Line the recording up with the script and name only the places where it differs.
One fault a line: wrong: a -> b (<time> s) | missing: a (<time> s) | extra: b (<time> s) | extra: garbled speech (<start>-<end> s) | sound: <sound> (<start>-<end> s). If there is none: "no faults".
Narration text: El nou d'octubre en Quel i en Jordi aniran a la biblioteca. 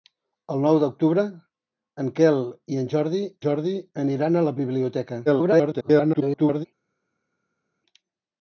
extra: Jordi (3.4 s)
extra: garbled speech (5.3-6.7 s)